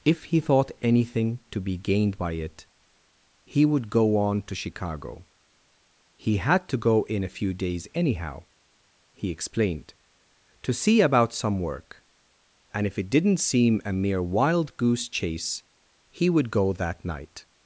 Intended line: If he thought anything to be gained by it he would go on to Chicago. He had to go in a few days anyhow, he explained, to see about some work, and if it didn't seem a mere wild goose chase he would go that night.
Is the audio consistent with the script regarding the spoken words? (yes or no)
yes